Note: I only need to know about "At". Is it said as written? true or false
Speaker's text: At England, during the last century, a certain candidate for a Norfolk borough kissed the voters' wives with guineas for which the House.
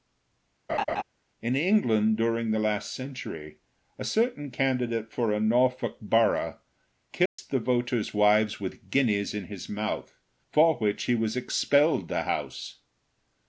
false